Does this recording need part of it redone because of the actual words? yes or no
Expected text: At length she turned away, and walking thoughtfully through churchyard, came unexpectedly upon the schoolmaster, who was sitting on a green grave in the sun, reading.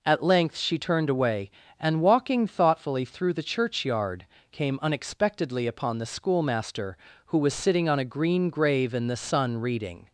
yes